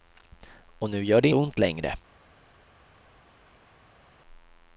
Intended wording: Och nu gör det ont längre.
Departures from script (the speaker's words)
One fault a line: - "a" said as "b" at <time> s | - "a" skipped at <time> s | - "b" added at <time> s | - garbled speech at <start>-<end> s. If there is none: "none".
none